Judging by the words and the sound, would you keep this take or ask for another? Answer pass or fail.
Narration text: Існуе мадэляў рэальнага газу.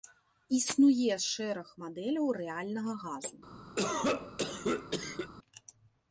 fail